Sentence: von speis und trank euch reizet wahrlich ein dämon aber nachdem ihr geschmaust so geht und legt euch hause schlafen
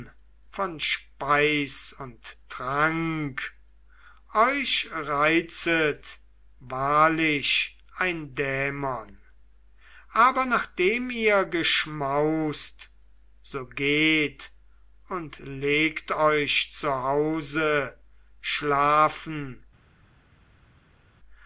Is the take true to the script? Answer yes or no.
no